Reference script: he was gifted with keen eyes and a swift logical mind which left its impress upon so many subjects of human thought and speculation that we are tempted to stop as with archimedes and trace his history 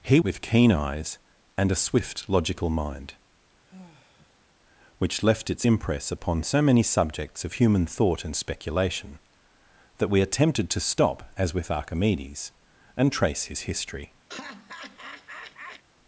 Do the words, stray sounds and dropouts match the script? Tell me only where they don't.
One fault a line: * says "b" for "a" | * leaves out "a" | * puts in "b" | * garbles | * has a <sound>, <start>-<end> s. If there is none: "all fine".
* leaves out "was gifted"
* has a sigh, 3.7-4.5 s
* has a laugh, 14.3-15.8 s